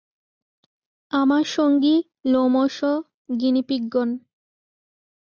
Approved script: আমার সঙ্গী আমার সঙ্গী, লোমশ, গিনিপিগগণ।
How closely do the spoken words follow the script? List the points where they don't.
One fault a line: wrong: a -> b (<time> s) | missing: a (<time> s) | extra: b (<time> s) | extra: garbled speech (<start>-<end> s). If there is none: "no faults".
missing: আমার সঙ্গী (1.9 s)